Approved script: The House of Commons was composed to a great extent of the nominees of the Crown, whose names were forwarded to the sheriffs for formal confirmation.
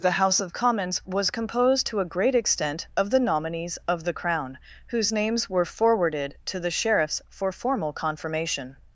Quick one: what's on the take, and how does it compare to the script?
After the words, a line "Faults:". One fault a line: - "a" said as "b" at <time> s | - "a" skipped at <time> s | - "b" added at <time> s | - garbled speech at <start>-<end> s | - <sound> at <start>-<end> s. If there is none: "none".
The House of Commons was composed to a great extent of the nominees of the Crown, whose names were forwarded to the sheriffs for formal confirmation.
Faults:
none